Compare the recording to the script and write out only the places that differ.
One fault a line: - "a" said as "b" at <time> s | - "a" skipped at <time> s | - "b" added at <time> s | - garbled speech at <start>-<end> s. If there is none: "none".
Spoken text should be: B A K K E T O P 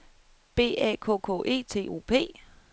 none